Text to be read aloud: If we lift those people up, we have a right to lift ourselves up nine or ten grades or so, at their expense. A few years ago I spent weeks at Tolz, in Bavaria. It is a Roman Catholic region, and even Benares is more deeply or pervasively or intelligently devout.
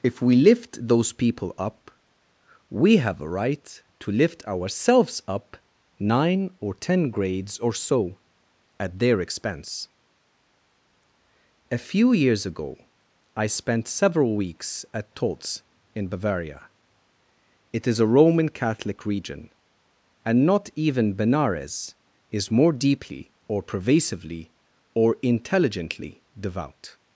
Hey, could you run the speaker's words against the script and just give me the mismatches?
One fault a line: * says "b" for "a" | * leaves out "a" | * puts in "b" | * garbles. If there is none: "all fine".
* puts in "several"
* puts in "not"